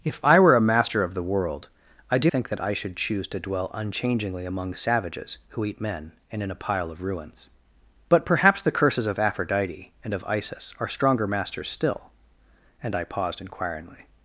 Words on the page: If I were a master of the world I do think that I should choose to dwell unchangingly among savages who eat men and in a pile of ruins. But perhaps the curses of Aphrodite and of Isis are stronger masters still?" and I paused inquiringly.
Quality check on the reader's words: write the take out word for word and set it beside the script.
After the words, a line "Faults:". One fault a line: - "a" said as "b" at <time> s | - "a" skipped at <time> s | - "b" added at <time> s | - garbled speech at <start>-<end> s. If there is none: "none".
If I were a master of the world I do think that I should choose to dwell unchangingly among savages who eat men and in a pile of ruins. But perhaps the curses of Aphrodite and of Isis are stronger masters still?" and I paused inquiringly.
Faults:
none